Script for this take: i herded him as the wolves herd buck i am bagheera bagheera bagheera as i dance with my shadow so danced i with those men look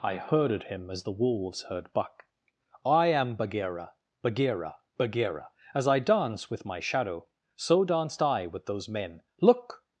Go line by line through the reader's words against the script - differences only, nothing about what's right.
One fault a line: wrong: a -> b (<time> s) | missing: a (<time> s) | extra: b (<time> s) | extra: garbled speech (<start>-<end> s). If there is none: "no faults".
no faults